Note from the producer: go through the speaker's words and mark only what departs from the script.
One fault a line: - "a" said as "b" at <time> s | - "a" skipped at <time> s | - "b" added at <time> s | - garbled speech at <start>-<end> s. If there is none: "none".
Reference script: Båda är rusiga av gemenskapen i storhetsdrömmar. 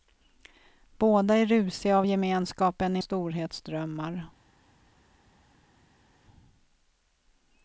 none